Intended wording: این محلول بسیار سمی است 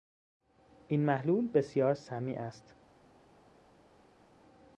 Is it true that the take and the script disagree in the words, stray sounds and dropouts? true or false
false